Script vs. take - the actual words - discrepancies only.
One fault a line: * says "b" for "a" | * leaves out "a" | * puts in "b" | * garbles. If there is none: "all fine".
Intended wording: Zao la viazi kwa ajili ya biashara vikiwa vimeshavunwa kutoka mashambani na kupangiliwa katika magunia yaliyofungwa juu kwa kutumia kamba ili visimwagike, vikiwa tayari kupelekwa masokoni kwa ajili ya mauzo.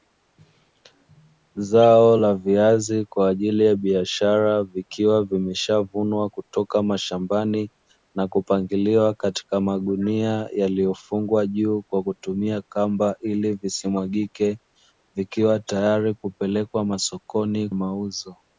* leaves out "kwa ajili ya"